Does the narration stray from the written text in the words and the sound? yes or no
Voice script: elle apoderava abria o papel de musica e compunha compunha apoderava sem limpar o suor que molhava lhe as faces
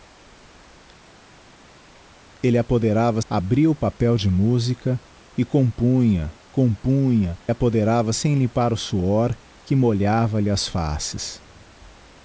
no